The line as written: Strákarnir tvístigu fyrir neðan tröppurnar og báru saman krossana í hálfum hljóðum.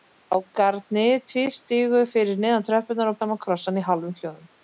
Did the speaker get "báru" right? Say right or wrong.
wrong